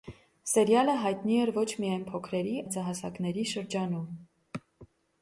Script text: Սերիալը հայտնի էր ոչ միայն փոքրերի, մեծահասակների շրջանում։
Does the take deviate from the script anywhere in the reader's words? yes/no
no